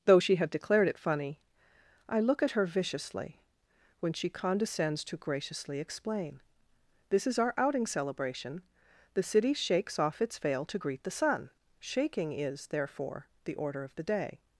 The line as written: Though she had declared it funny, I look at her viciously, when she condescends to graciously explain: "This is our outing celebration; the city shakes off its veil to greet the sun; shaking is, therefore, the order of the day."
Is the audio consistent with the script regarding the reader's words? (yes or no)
yes